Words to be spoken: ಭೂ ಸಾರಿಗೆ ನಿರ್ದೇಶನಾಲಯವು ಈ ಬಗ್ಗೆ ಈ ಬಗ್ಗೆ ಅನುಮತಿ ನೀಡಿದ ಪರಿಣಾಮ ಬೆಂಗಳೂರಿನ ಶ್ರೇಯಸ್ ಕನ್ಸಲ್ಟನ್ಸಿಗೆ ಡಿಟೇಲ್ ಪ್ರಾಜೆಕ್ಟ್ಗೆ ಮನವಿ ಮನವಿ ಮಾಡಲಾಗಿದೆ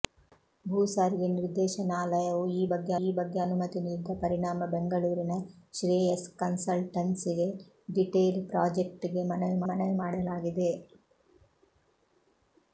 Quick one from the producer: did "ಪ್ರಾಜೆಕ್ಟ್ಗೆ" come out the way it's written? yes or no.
yes